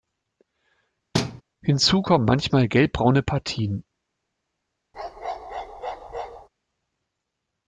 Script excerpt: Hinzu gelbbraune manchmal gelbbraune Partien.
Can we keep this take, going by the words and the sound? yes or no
no